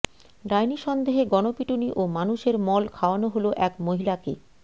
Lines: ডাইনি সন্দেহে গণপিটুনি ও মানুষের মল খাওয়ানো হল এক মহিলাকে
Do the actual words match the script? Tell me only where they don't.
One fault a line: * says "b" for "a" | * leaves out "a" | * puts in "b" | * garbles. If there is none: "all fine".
all fine